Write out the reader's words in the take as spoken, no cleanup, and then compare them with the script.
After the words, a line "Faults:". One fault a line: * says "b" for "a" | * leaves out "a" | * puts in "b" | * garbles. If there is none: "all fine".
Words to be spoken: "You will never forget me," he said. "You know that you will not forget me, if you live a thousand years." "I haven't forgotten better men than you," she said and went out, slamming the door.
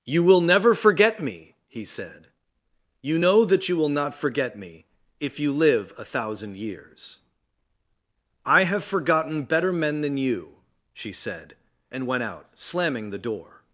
"You will never forget me," he said. "You know that you will not forget me, if you live a thousand years." "I have forgotten better men than you," she said and went out, slamming the door.
Faults:
* says "have" for "haven't"